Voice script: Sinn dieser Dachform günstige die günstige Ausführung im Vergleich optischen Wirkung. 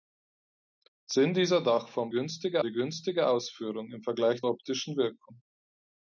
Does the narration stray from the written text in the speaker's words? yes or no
no